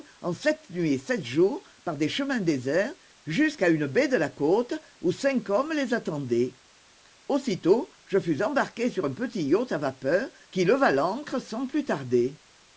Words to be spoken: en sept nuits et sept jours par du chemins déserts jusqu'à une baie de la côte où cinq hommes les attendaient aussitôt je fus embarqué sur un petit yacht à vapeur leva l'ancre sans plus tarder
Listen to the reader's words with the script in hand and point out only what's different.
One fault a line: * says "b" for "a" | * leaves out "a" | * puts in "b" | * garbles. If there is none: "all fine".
* says "des" for "du"
* puts in "qui"